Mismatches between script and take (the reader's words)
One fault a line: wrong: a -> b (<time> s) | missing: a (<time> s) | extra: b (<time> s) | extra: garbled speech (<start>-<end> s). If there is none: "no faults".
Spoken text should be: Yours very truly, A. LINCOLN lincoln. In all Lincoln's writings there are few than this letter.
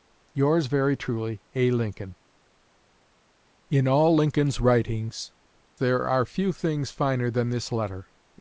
missing: lincoln (2.1 s)
extra: things finer (6.5 s)